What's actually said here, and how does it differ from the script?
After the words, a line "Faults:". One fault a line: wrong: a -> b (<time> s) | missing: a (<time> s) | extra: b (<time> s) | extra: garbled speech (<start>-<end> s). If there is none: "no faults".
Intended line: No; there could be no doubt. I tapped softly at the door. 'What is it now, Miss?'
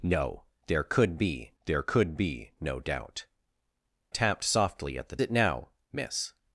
No; there could be there could be no doubt. tapped softly at the it now, Miss?'
Faults:
extra: there could be (1.6 s)
missing: I (3.2 s)
missing: door What is (5.2 s)